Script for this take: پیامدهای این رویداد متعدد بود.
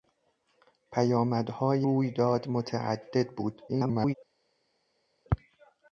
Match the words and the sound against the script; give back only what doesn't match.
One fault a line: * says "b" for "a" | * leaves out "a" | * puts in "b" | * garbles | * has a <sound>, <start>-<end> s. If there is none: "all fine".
* leaves out "این"
* garbles